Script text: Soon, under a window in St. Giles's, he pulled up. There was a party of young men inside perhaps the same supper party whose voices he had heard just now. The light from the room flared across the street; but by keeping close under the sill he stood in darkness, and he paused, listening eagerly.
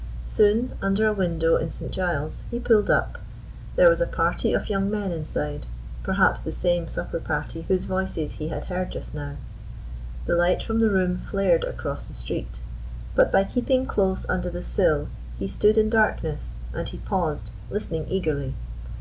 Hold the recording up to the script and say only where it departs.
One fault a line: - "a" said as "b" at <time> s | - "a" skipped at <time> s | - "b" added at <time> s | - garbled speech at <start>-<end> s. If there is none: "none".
none